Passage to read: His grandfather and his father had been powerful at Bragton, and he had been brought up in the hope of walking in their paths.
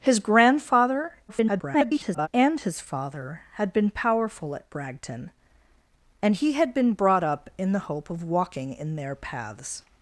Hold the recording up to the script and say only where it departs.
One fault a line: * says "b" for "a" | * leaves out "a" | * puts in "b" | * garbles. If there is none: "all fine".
* garbles